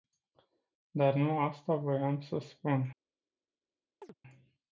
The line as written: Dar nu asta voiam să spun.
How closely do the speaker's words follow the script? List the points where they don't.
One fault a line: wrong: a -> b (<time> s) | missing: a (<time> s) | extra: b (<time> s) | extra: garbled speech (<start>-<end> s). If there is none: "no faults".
no faults